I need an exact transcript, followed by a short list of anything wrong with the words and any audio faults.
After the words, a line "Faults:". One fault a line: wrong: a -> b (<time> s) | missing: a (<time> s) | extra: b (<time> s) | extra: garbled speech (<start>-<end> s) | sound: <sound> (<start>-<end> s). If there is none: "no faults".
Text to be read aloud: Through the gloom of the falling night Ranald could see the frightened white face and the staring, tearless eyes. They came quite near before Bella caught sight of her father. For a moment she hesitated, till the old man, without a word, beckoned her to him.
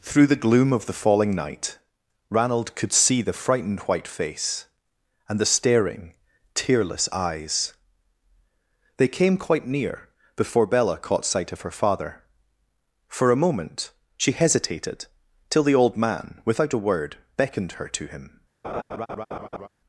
Through the gloom of the falling night Ranald could see the frightened white face and the staring, tearless eyes. They came quite near before Bella caught sight of her father. For a moment she hesitated, till the old man, without a word, beckoned her to him.
Faults:
sound: laugh (18.6-19.7 s)